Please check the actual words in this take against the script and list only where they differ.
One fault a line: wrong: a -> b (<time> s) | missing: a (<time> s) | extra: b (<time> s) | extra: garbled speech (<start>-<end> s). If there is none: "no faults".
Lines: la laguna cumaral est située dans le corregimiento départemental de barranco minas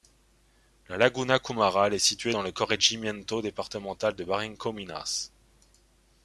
no faults